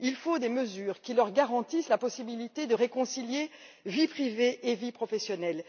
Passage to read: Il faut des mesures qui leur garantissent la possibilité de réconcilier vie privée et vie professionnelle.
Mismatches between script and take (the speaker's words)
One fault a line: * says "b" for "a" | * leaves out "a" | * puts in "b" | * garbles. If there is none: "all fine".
all fine